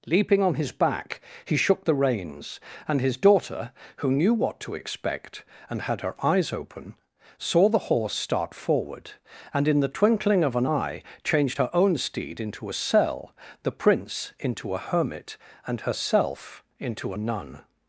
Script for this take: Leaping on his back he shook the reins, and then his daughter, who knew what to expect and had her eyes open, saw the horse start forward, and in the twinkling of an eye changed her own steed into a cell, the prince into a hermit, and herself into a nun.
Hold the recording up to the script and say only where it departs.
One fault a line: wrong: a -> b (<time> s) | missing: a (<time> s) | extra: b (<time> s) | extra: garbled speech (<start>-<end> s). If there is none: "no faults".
missing: then (3.0 s)